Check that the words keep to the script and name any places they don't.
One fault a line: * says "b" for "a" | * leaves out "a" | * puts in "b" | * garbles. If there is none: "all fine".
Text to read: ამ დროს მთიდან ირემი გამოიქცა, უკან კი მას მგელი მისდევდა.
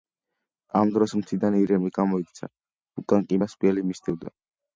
all fine